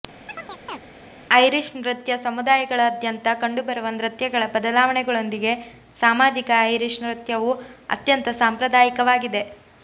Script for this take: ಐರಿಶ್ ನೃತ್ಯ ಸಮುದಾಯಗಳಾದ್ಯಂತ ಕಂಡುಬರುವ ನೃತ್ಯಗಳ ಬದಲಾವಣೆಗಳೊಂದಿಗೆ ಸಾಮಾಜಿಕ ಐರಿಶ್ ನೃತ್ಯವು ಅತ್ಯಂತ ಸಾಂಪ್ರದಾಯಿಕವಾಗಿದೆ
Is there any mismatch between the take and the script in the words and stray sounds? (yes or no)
yes